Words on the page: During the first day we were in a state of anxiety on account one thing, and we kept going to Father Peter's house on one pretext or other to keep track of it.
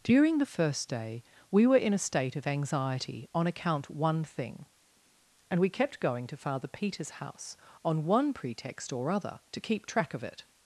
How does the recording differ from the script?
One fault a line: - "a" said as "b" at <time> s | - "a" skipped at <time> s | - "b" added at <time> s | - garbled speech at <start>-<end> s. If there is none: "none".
none